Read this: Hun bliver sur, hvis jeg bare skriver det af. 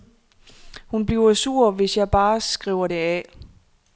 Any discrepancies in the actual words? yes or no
no